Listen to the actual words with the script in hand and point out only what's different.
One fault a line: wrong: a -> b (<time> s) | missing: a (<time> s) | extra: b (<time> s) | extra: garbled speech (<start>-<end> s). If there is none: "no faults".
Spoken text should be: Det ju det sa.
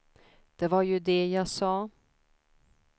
extra: var (0.7 s)
extra: jag (1.3 s)